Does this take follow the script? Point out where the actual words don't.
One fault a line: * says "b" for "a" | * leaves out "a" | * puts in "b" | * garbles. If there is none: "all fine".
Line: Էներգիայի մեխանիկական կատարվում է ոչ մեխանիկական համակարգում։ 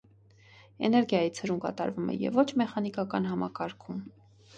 * says "ցրում" for "մեխանիկական"
* puts in "և"